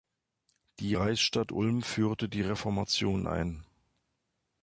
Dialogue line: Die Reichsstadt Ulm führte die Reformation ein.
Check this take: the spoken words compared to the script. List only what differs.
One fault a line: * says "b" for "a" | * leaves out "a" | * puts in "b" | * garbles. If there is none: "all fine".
all fine